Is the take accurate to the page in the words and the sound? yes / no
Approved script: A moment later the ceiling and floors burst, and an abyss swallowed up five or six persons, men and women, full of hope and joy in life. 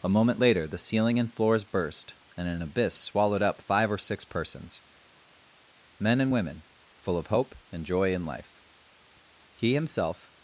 no